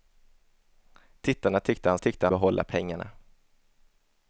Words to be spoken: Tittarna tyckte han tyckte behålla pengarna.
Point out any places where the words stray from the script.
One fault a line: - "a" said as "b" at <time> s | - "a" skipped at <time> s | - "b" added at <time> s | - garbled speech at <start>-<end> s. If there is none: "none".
none